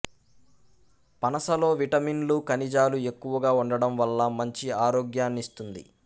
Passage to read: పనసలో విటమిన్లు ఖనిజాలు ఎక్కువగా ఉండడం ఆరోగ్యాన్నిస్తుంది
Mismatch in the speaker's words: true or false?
true